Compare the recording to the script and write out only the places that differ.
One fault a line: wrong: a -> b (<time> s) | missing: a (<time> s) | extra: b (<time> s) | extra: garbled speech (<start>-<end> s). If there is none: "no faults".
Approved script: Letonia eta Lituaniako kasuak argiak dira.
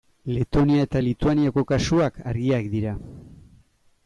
no faults